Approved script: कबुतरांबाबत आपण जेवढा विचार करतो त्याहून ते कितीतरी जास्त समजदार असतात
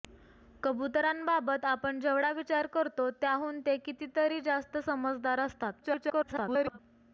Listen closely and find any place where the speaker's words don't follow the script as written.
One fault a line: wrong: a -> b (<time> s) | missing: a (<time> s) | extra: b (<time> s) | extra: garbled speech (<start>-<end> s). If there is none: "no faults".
extra: garbled speech (5.8-6.8 s)